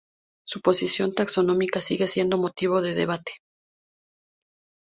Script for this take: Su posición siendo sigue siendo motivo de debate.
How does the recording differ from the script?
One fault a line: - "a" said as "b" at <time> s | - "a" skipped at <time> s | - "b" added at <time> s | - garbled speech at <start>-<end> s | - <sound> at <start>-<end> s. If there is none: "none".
- "siendo" said as "taxonómica" at 1.1 s